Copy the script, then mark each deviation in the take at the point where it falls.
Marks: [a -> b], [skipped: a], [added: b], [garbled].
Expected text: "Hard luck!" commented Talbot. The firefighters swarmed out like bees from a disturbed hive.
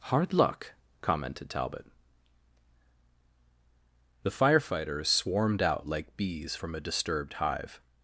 "Hard luck!" commented Talbot. The firefighters swarmed out like bees from a disturbed hive.